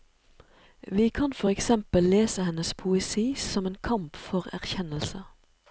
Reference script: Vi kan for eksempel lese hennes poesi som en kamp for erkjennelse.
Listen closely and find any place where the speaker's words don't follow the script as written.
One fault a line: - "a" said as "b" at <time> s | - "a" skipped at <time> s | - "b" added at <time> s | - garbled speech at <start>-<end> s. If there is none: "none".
none